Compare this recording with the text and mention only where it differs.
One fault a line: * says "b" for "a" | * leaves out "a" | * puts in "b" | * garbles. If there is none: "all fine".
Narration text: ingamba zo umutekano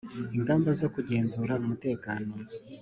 * puts in "kugenzura"